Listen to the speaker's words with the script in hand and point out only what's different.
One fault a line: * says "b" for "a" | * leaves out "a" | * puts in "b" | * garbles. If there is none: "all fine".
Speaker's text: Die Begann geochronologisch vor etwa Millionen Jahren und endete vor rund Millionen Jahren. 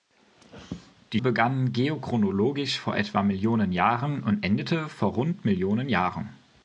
all fine